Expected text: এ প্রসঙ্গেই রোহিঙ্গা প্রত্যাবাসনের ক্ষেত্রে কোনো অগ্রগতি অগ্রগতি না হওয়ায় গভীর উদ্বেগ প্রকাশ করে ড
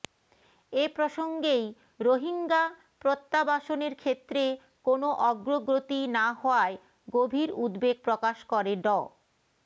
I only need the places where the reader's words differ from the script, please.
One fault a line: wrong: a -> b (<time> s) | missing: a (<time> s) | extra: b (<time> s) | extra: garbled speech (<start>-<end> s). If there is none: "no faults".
missing: অগ্রগতি (6.0 s)